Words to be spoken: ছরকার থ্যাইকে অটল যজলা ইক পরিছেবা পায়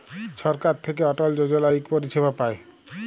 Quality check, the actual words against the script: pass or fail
pass